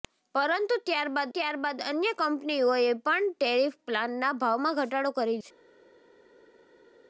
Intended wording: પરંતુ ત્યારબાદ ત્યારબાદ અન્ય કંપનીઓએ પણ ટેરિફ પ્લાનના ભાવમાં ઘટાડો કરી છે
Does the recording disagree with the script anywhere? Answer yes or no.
no